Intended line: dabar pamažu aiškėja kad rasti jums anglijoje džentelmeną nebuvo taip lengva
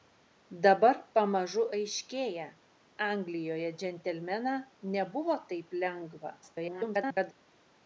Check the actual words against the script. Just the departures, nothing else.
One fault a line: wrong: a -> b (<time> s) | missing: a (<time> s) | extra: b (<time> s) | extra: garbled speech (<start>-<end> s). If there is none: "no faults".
missing: kad rasti jums (2.5 s)
extra: garbled speech (6.4-7.3 s)